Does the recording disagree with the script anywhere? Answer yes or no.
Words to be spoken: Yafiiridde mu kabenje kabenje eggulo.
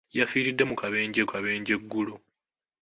no